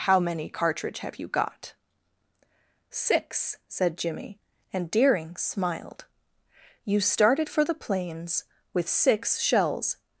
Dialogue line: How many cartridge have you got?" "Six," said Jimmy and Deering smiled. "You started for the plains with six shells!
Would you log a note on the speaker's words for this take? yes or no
no